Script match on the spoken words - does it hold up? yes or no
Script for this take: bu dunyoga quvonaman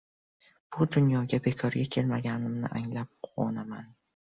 no